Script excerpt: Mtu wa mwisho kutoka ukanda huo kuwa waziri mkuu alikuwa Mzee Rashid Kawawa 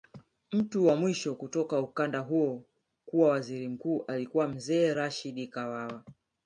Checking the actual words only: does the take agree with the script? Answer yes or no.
yes